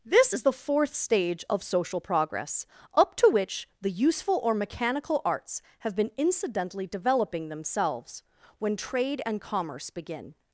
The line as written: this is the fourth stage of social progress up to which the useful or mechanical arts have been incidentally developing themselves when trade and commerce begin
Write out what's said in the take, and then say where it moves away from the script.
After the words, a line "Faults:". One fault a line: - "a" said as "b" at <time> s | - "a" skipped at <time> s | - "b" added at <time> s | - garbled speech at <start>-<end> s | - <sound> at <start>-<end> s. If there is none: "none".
this is the fourth stage of social progress up to which the useful or mechanical arts have been incidentally developing themselves when trade and commerce begin
Faults:
none